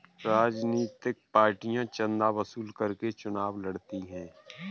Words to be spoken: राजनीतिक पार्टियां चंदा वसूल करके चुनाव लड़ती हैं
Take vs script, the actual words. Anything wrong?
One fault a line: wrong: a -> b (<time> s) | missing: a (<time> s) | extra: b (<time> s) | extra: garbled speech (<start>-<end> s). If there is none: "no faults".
no faults